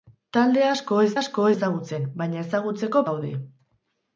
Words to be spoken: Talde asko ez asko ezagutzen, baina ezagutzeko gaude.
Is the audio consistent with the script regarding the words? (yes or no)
yes